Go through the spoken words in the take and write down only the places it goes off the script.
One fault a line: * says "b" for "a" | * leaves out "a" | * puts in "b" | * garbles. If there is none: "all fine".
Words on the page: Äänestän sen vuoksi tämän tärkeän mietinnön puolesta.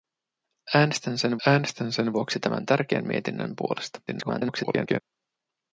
* puts in "äänestän sen"
* garbles